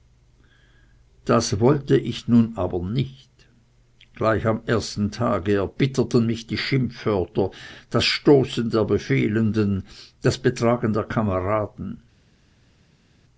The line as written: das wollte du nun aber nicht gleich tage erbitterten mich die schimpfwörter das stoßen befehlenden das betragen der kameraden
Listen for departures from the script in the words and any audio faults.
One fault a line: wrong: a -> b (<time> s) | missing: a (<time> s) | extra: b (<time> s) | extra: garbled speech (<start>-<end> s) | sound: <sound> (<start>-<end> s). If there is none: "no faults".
wrong: du -> ich (1.9 s)
extra: am ersten (4.5 s)
extra: der (8.7 s)